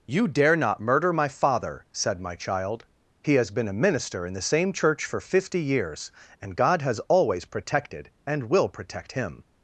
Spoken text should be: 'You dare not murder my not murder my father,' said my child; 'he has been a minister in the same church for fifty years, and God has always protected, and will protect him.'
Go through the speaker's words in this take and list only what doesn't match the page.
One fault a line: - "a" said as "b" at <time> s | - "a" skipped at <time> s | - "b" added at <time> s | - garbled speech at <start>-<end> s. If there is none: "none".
- "not murder my" skipped at 1.3 s